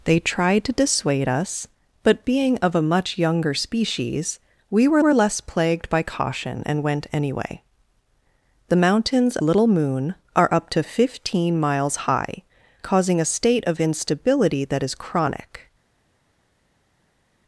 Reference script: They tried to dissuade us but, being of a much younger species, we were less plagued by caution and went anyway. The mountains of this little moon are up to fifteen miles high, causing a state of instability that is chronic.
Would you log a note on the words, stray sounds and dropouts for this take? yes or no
yes